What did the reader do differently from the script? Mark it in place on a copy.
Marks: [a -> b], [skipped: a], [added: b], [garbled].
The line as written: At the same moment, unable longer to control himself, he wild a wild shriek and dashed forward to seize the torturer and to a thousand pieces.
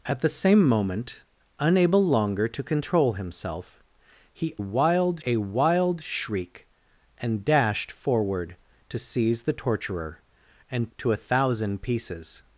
At the same moment, unable longer to control himself, he wild a wild shriek and dashed forward to seize the torturer and to a thousand pieces.